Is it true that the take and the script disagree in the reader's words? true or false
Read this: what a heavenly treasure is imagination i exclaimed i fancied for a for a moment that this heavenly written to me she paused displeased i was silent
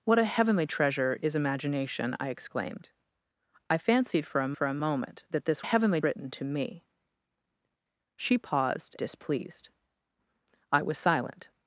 false